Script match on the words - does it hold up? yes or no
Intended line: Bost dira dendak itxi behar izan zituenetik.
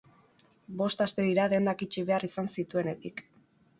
no